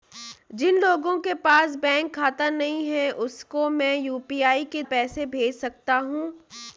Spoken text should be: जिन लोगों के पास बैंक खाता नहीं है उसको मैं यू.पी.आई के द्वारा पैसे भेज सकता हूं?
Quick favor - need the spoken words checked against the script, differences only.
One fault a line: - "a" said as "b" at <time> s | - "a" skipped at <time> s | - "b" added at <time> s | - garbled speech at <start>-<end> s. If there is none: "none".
- "द्वारा" skipped at 4.8 s